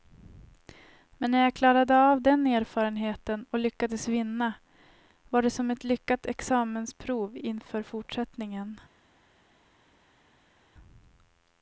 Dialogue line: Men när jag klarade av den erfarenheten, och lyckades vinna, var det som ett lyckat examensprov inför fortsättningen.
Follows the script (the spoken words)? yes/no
yes